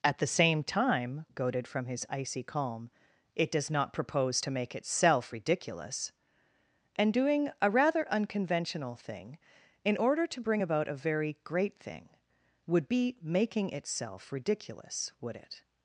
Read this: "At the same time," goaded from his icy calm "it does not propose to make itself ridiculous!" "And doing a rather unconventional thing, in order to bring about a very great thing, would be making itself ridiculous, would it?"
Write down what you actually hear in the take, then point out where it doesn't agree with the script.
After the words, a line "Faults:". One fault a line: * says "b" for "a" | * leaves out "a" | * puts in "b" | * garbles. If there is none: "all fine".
"At the same time," goaded from his icy calm "it does not propose to make itself ridiculous!" "And doing a rather unconventional thing, in order to bring about a very great thing, would be making itself ridiculous, would it?"
Faults:
all fine